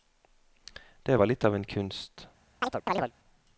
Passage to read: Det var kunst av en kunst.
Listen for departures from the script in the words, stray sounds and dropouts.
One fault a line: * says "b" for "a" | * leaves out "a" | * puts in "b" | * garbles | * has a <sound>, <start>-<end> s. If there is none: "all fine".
* says "litt" for "kunst"
* has a chirp, 2.6-3.1 s